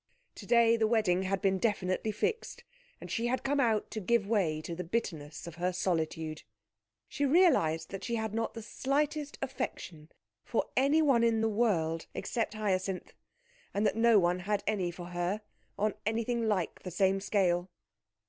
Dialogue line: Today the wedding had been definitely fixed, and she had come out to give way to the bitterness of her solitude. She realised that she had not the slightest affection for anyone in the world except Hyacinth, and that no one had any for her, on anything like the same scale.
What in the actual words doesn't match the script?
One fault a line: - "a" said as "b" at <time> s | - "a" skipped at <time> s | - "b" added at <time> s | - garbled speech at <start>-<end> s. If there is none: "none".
none